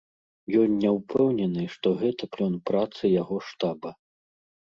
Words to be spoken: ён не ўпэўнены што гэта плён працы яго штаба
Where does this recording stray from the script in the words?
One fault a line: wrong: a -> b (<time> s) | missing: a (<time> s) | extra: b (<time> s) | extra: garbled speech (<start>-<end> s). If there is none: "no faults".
no faults